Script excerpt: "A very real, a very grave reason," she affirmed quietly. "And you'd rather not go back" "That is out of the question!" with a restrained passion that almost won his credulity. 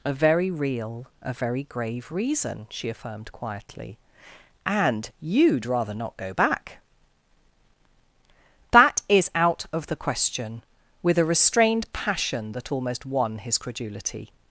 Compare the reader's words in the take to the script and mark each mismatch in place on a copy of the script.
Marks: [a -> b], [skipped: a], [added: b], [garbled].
"A very real, a very grave reason," she affirmed quietly. "And you'd rather not go back" "That is out of the question!" with a restrained passion that almost won his credulity.